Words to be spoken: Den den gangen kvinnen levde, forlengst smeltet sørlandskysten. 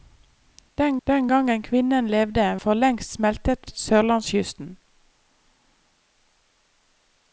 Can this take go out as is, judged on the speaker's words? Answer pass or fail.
pass